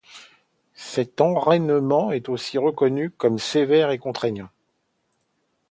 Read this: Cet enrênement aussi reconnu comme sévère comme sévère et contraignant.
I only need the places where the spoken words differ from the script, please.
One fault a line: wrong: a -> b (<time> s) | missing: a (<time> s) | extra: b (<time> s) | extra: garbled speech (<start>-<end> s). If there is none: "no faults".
extra: est (2.1 s)
missing: comme sévère (3.9 s)